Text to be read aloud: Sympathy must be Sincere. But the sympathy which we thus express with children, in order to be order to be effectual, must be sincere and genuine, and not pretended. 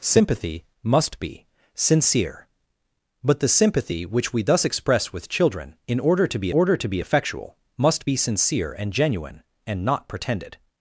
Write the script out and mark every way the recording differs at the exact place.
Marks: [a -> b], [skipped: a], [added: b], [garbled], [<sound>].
Sympathy must be Sincere. But the sympathy which we thus express with children, in order to be order to be effectual, must be sincere and genuine, and not pretended.